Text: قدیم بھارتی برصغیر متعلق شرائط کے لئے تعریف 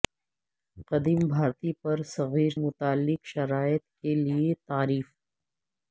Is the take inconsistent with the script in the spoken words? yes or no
no